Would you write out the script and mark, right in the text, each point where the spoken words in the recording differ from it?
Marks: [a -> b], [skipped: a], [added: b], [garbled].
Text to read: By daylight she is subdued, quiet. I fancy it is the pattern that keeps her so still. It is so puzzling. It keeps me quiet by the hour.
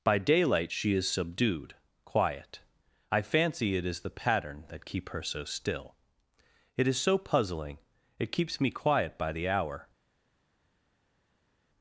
By daylight she is subdued, quiet. I fancy it is the pattern that [keeps -> keep] her so still. It is so puzzling. It keeps me quiet by the hour.